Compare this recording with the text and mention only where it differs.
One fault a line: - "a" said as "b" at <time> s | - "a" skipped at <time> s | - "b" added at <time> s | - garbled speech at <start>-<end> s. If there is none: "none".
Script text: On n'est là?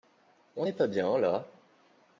- "pas bien" added at 0.7 s